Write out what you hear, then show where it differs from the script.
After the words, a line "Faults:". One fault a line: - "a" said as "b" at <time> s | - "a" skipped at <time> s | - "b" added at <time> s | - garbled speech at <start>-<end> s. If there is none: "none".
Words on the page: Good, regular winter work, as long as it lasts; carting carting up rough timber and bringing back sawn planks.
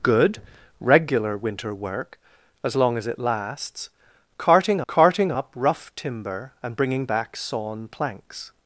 Good, regular winter work, as long as it lasts; carting carting up rough timber and bringing back sawn planks.
Faults:
none